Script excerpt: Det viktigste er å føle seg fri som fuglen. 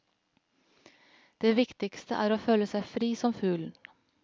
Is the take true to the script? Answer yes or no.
yes